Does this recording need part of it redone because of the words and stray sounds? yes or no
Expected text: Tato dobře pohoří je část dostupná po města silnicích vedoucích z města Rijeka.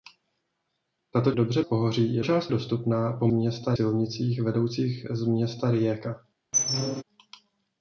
yes